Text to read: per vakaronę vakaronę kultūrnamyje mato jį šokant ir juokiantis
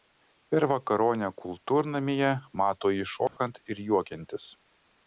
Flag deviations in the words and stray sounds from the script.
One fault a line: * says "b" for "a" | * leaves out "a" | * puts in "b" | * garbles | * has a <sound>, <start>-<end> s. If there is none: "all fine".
* leaves out "vakaronę"
* has a dropout, 3.3-3.4 s